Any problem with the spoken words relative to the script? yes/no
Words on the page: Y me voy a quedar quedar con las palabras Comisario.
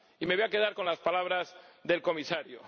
yes